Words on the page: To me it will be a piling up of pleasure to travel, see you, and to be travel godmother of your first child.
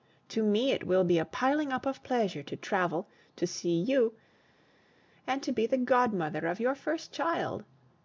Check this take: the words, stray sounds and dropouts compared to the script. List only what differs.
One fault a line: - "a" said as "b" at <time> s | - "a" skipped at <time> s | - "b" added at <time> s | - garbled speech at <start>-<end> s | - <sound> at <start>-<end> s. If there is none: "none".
- "to" added at 3.4 s
- "travel" said as "the" at 5.7 s